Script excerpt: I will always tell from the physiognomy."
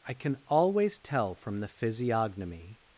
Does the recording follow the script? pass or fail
fail